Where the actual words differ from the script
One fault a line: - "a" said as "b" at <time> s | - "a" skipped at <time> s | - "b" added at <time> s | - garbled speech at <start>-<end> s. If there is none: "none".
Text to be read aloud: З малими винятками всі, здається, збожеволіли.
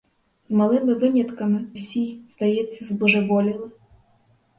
none